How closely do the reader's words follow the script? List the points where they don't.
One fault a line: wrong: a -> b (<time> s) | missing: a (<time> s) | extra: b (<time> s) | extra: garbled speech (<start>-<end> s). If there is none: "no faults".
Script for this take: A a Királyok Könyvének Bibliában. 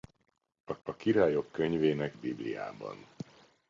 no faults